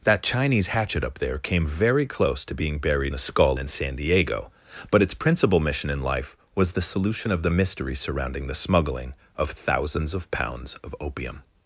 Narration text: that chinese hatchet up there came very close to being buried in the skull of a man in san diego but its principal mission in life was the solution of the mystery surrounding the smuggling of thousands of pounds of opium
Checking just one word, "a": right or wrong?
wrong